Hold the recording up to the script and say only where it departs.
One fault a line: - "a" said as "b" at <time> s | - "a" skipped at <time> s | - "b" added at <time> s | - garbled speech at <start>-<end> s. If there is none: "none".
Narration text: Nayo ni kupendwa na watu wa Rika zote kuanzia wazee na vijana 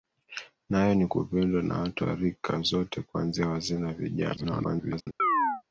- garbled speech at 4.4-5.1 s